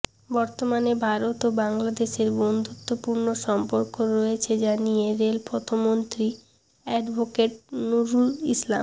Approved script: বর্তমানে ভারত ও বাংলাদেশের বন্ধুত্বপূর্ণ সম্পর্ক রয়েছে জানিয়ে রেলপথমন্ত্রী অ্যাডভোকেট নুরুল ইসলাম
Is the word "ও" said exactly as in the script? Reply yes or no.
yes